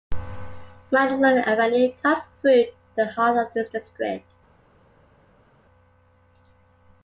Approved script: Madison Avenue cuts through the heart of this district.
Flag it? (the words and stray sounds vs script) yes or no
no